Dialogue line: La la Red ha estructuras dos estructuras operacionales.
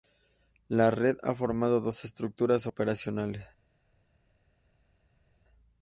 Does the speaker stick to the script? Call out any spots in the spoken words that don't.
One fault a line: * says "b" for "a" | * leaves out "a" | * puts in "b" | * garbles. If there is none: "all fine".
* leaves out "la"
* says "formado" for "estructuras"